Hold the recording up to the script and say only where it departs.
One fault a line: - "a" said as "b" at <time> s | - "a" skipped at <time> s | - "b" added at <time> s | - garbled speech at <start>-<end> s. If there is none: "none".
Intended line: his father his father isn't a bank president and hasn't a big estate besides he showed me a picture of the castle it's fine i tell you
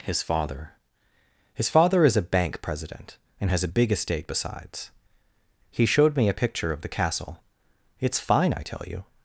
- "isn't" said as "is" at 2.0 s
- "hasn't" said as "has" at 3.5 s